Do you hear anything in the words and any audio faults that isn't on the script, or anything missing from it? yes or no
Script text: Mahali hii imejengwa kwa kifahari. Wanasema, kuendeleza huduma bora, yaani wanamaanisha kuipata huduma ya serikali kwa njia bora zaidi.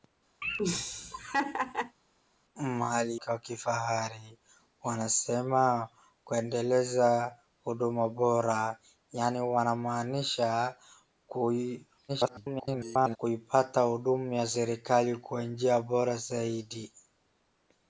yes